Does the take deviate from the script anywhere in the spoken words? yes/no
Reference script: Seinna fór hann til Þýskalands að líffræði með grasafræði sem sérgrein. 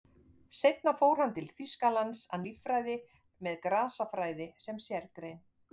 no